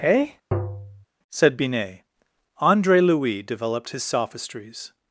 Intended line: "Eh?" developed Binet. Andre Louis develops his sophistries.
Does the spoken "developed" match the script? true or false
false